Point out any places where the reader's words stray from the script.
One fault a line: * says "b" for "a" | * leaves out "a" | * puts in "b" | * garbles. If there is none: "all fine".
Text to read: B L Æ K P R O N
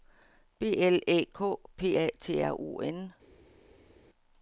* puts in "A T"